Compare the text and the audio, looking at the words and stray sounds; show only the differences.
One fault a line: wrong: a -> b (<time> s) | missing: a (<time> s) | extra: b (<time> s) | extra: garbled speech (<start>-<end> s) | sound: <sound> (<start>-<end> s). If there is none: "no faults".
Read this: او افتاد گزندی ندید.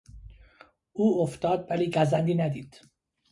extra: ولی (1.7 s)